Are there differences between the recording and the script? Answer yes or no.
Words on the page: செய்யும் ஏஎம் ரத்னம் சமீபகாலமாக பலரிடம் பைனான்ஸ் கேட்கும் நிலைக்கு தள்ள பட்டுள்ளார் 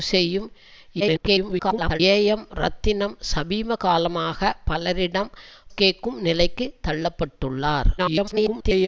yes